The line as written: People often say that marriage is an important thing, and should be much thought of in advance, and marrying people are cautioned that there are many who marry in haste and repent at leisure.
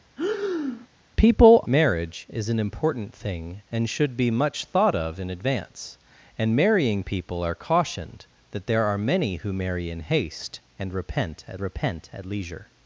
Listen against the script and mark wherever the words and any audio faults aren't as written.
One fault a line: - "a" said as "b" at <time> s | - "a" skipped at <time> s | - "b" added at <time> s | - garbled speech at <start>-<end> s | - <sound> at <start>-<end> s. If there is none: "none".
- breath at 0.2-0.9 s
- "often say that" skipped at 1.7 s
- "repent at" added at 11.6 s